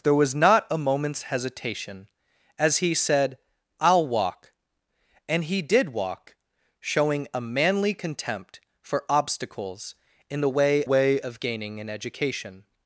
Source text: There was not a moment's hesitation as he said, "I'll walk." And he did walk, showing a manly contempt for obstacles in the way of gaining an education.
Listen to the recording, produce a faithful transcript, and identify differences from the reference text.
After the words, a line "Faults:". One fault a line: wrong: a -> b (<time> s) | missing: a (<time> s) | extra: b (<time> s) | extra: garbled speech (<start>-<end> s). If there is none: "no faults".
There was not a moment's hesitation as he said, "I'll walk." And he did walk, showing a manly contempt for obstacles in the way way of gaining an education.
Faults:
extra: way (10.8 s)